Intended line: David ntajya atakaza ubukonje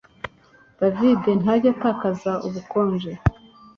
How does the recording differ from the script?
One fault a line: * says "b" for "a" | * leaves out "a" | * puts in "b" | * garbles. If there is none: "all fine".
all fine